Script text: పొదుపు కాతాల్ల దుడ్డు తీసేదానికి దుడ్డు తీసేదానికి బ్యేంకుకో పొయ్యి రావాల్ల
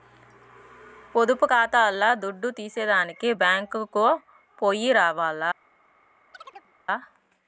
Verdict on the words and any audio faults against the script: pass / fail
fail